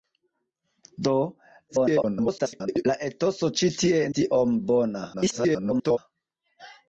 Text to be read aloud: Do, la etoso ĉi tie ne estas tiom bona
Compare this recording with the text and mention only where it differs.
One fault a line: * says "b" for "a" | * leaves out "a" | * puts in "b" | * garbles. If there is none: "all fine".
* garbles
* leaves out "ne estas"
* garbles